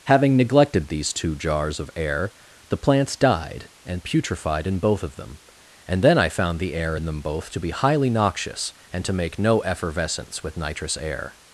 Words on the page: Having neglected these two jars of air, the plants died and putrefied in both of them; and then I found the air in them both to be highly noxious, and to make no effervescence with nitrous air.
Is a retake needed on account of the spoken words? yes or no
no